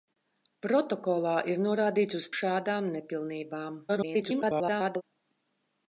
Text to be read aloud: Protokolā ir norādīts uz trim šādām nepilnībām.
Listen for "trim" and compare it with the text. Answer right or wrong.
wrong